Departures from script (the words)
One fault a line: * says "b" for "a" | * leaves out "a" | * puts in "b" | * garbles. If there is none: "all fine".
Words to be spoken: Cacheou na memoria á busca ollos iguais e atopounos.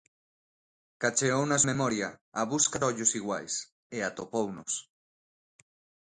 all fine